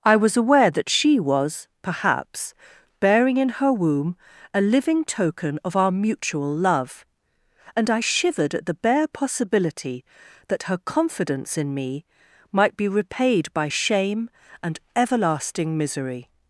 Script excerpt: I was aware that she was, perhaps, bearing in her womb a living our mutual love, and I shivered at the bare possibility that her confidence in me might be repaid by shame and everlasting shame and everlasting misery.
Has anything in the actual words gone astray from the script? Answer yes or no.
yes